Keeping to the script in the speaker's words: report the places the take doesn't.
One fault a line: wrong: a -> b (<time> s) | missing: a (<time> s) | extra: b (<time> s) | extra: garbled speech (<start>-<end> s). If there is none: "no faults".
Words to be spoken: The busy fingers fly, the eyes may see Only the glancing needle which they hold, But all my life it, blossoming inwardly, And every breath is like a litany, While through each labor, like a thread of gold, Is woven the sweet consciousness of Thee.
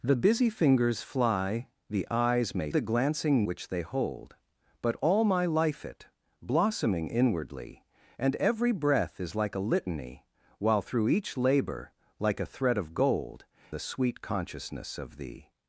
missing: see Only (2.7 s)
missing: needle (3.4 s)
missing: Is woven (13.5 s)